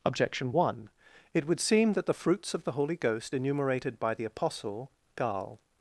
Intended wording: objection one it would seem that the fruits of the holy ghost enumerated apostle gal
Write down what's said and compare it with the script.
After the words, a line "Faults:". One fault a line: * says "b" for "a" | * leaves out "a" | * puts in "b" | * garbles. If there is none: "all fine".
objection one it would seem that the fruits of the holy ghost enumerated by the apostle gal
Faults:
* puts in "by the"